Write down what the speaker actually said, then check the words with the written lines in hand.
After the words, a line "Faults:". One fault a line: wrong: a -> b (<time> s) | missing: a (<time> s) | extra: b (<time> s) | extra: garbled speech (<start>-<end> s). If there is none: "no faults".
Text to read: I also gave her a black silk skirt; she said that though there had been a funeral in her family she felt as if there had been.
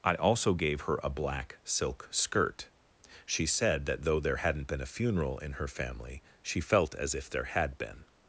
I also gave her a black silk skirt; she said that though there hadn't been a funeral in her family she felt as if there had been.
Faults:
wrong: had -> hadn't (4.4 s)